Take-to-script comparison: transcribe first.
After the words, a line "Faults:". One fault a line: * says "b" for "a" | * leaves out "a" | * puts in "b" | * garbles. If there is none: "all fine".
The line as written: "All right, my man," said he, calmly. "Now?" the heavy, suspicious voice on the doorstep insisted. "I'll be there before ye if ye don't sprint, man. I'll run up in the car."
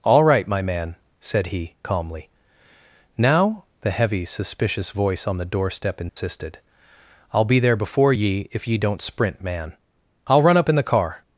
"All right, my man," said he, calmly. "Now?" the heavy, suspicious voice on the doorstep insisted. "I'll be there before ye if ye don't sprint, man. I'll run up in the car."
Faults:
all fine